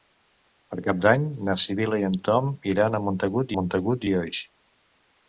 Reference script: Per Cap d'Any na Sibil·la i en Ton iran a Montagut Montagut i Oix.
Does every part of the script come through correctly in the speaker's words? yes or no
yes